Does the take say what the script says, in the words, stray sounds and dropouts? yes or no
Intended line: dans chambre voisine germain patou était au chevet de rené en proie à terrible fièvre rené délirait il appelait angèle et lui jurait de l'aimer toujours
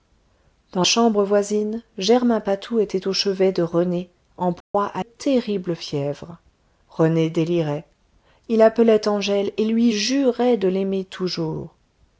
no